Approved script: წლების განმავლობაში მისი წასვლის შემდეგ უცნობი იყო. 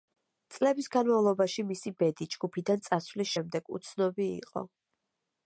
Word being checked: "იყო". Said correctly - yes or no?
yes